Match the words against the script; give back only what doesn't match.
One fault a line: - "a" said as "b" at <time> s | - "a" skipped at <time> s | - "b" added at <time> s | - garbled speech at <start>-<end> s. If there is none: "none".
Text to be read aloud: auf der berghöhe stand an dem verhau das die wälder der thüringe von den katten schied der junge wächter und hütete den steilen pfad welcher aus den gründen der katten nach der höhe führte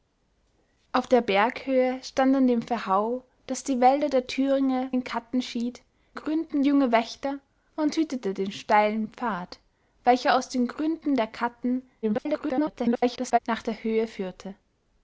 - "von" skipped at 4.9 s
- "der" said as "gründen" at 6.1 s
- garbled speech at 12.0-13.4 s